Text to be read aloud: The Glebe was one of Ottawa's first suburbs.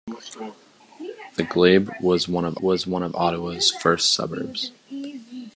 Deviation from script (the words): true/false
true